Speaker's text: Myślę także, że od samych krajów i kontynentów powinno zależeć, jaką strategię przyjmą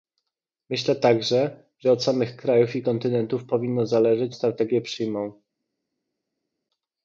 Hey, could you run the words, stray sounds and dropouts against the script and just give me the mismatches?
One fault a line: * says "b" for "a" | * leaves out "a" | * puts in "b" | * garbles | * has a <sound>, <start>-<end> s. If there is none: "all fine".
* leaves out "jaką"